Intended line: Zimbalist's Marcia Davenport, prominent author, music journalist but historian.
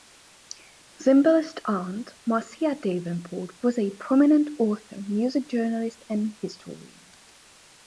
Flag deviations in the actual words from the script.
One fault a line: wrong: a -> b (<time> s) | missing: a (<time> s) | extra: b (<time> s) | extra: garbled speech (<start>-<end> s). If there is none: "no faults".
extra: aunt (1.6 s)
extra: was a (3.6 s)
wrong: but -> and (6.1 s)